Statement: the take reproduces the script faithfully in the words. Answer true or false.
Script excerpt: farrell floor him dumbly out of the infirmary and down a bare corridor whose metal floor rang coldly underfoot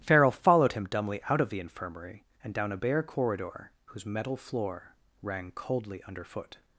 false